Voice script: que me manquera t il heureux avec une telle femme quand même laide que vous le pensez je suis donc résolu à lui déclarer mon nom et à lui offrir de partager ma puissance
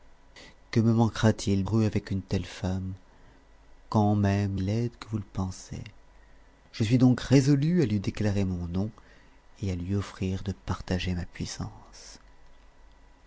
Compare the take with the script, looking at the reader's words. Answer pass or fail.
pass